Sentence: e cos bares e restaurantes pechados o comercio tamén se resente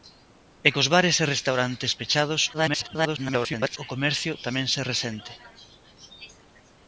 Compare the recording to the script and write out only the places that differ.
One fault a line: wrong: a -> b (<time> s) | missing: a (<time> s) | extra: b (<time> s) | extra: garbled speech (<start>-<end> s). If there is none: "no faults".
extra: garbled speech (2.5-3.8 s)